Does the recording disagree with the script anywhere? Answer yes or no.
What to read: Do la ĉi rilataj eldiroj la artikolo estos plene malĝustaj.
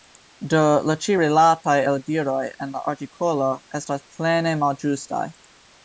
yes